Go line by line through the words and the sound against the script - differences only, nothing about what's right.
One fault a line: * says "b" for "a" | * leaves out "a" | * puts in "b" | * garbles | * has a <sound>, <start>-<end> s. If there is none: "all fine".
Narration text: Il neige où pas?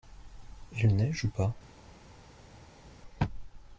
all fine